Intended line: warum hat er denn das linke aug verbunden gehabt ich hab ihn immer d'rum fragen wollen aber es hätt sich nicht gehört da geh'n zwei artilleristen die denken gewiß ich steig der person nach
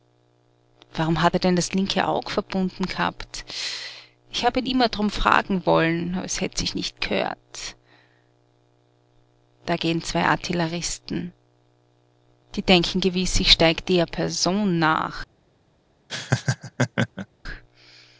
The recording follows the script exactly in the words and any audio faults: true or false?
false